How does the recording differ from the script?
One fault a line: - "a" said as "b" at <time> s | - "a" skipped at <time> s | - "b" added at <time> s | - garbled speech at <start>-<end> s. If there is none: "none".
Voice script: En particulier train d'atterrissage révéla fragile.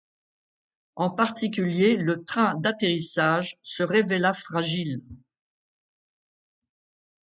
- "le" added at 1.9 s
- "se" added at 3.6 s